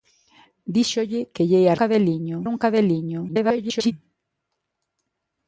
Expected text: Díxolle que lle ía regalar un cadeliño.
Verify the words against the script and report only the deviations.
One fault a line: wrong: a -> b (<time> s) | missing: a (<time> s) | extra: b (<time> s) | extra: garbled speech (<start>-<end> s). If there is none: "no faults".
wrong: regalar -> cadeliño (1.8 s)
extra: garbled speech (3.3-3.9 s)